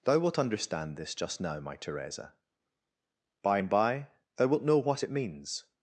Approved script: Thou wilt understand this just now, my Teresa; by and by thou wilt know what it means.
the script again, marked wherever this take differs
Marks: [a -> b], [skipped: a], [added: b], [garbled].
Thou wilt understand this just now, my Teresa; by and by thou wilt know what it means.